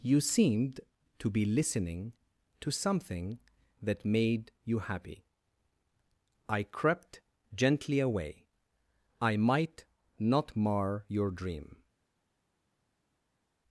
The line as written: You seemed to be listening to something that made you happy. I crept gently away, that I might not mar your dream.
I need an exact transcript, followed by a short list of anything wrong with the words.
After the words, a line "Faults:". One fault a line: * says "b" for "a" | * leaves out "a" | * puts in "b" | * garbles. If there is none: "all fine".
You seemed to be listening to something that made you happy. I crept gently away, I might not mar your dream.
Faults:
* leaves out "that"